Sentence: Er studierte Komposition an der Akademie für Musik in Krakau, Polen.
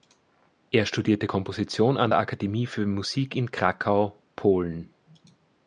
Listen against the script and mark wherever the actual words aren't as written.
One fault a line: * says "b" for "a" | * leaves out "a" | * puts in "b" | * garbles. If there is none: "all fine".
all fine